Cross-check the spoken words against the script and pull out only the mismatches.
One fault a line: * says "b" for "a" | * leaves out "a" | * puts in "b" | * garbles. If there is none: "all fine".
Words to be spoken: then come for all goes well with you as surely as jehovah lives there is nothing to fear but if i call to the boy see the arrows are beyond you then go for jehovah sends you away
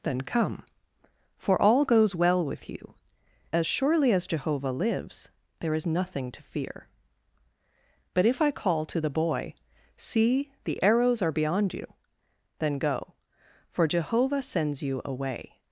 all fine